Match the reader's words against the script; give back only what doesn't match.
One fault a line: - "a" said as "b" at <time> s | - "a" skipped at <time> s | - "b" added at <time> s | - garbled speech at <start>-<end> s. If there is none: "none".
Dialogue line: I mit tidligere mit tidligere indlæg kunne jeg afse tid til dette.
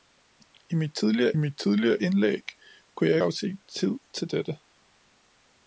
none